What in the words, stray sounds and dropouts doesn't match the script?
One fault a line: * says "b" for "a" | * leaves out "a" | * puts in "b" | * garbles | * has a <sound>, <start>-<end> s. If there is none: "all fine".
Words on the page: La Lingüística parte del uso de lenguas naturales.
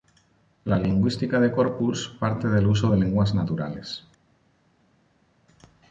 * puts in "de corpus"